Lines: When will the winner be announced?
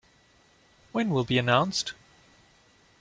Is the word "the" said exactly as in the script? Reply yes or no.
no